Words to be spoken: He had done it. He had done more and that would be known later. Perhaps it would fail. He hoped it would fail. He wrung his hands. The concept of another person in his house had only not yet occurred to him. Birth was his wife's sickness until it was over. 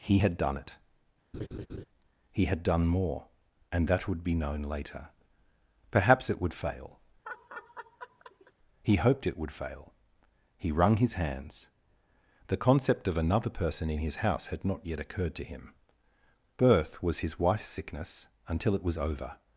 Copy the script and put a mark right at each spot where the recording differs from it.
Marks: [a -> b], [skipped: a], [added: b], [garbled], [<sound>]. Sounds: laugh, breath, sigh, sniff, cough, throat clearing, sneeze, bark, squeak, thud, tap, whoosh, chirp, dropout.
He had done it. [laugh] He had done more and that would be known later. Perhaps it would fail. [laugh] He hoped it would fail. He wrung his hands. The concept of another person in his house had [skipped: only] not yet occurred to him. Birth was his wife's sickness until it was over.